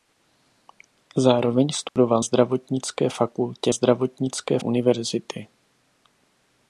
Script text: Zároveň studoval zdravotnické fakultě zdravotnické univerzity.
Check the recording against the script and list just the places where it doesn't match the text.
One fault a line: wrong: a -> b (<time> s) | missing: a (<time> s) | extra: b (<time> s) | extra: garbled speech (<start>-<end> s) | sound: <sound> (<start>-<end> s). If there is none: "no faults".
sound: dropout (1.9-2.0 s)